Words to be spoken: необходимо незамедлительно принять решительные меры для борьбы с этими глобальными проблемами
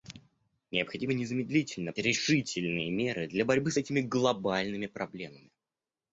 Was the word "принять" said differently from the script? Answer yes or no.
yes